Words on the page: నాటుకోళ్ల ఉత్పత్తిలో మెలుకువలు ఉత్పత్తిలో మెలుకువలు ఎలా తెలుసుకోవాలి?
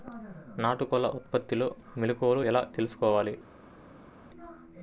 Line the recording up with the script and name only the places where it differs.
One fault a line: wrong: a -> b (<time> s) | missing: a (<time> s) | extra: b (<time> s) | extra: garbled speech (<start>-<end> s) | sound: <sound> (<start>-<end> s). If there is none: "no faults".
missing: ఉత్పత్తిలో మెలుకువలు (2.4 s)